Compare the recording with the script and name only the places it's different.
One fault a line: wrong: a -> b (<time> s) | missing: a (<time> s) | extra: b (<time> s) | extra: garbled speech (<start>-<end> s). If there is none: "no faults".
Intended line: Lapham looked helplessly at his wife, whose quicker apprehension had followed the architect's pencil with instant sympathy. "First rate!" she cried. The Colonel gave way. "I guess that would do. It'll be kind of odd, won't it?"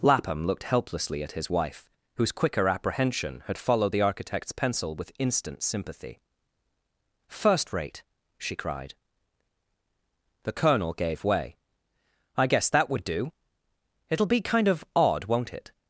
no faults